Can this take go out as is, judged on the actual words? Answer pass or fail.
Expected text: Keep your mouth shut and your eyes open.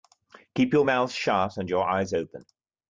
pass